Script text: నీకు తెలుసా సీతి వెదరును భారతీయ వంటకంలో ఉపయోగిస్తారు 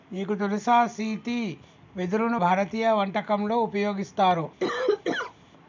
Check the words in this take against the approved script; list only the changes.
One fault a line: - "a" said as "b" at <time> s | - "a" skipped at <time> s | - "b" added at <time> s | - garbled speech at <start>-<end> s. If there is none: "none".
none